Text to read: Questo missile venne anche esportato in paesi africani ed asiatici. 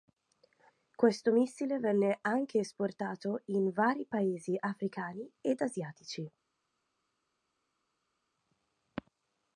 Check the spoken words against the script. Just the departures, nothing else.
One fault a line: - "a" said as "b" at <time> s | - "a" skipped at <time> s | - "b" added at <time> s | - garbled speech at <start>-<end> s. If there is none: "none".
- "vari" added at 3.7 s